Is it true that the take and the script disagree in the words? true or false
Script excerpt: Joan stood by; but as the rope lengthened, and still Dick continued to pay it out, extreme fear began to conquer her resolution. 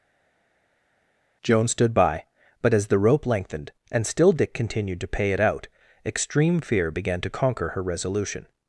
false